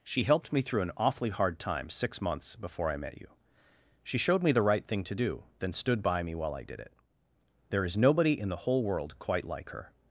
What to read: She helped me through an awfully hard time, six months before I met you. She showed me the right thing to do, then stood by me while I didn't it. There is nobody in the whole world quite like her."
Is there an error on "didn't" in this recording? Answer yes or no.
yes